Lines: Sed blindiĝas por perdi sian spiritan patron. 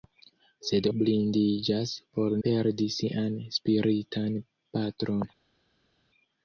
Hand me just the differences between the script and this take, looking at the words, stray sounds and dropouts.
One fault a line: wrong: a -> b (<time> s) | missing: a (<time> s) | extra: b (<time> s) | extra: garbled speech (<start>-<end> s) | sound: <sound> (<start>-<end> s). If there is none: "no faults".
no faults